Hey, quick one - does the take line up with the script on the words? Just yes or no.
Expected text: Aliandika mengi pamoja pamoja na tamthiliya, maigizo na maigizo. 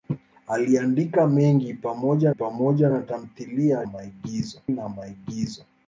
yes